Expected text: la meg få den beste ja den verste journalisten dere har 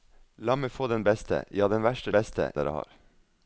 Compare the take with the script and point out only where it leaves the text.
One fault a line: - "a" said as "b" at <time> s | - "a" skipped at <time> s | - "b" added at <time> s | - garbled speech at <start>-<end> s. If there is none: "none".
- "journalisten" said as "beste" at 2.1 s